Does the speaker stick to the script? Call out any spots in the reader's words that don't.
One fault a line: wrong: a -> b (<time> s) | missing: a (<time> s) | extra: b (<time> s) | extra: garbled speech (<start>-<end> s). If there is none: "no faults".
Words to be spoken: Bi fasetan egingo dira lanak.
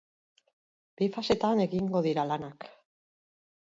no faults